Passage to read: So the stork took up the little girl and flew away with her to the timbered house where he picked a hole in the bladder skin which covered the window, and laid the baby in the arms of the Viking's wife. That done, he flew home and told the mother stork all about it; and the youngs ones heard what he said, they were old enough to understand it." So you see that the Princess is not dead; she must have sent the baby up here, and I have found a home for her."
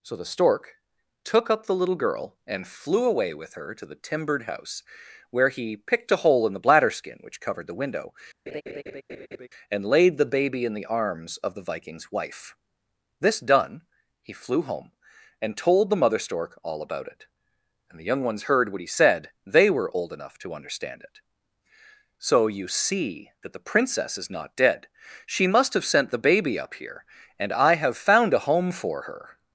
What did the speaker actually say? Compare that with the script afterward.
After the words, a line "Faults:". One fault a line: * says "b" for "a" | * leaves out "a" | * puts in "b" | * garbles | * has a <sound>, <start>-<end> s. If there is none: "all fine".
So the stork took up the little girl and flew away with her to the timbered house where he picked a hole in the bladder skin which covered the window, and laid the baby in the arms of the Viking's wife. This done, he flew home and told the mother stork all about it; and the young ones heard what he said, they were old enough to understand it." So you see that the Princess is not dead; she must have sent the baby up here, and I have found a home for her."
Faults:
* has a laugh, 8.5-9.5 s
* says "This" for "That"
* says "young" for "youngs"